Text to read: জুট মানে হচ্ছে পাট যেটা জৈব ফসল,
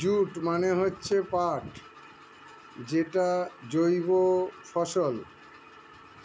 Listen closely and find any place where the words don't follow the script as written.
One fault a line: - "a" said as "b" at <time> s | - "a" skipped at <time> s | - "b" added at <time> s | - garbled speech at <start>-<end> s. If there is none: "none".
none